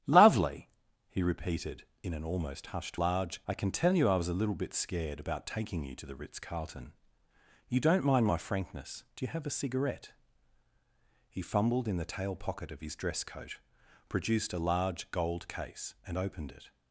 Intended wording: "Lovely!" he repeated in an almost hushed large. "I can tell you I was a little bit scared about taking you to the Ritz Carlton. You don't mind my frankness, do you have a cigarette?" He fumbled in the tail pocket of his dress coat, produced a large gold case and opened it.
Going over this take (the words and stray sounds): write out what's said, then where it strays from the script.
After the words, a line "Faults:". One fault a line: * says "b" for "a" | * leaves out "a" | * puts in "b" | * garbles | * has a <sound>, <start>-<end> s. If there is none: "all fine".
"Lovely!" he repeated in an almost hushed large. "I can tell you I was a little bit scared about taking you to the Ritz Carlton. You don't mind my frankness, do you have a cigarette?" He fumbled in the tail pocket of his dress coat, produced a large gold case and opened it.
Faults:
all fine